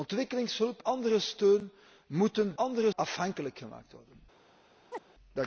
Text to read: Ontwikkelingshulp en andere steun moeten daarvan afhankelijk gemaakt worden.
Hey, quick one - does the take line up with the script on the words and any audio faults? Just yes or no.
no